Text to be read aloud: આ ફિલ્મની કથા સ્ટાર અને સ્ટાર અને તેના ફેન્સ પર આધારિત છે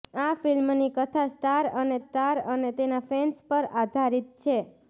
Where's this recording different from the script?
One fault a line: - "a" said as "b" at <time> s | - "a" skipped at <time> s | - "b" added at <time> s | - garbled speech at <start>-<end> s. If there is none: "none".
none